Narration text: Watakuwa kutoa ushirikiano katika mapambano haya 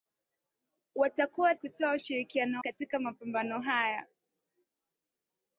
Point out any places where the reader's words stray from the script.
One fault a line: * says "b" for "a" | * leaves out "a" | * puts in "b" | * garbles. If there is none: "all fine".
all fine